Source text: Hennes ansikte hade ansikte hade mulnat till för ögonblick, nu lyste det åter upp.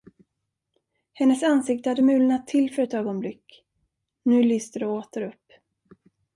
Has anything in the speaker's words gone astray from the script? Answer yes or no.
yes